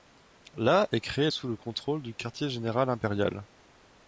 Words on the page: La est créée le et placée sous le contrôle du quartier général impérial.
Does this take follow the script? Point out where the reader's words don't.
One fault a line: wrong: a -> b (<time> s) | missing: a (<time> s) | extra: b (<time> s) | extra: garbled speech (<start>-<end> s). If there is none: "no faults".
missing: le et placée (1.3 s)